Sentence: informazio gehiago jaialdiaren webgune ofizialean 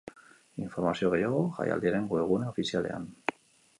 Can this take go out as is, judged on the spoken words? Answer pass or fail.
pass